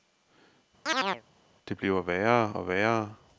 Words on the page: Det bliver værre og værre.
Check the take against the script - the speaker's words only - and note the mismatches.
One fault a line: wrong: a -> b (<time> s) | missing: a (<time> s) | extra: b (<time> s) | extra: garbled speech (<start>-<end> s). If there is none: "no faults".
no faults